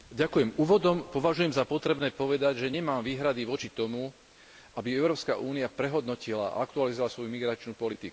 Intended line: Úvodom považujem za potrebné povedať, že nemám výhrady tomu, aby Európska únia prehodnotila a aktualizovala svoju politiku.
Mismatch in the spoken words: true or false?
true